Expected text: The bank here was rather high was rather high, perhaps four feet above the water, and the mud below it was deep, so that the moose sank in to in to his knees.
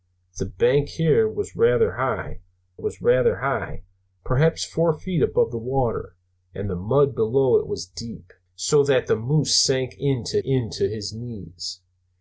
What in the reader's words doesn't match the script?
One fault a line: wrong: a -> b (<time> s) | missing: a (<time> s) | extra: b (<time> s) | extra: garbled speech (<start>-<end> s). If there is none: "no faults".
no faults